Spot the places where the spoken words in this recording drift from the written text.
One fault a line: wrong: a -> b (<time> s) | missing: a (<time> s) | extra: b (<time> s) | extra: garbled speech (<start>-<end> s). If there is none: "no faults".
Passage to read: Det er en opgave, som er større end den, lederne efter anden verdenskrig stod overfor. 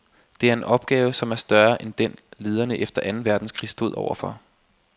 no faults